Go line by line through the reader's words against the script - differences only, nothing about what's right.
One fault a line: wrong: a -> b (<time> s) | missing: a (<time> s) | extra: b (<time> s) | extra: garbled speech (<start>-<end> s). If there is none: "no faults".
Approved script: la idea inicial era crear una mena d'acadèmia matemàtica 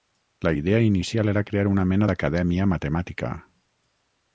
no faults